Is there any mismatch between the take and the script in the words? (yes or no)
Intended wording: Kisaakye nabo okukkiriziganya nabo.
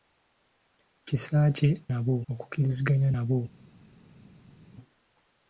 no